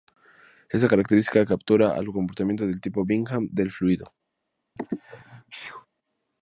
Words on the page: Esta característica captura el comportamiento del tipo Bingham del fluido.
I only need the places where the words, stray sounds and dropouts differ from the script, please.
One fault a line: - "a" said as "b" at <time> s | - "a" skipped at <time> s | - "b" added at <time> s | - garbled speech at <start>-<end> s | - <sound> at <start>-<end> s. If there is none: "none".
- sneeze at 4.8-5.9 s